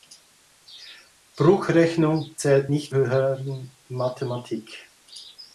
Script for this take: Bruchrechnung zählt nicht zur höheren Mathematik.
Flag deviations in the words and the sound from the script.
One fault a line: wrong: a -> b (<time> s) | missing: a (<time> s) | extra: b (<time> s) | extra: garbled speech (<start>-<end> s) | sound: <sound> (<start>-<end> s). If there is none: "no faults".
missing: zur (2.9 s)